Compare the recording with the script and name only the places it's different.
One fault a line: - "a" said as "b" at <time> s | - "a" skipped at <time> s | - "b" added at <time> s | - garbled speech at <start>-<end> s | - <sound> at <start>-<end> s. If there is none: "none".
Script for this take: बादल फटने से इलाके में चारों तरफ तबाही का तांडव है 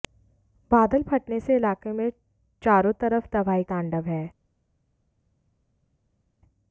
- "का" skipped at 3.6 s